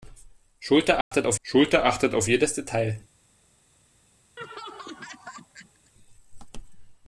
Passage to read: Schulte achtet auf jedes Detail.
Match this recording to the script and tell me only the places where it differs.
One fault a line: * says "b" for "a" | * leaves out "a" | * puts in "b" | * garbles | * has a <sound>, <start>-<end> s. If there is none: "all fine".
* has a dropout, 1.0-1.1 s
* puts in "schulte achtet auf"
* has a laugh, 4.4-5.9 s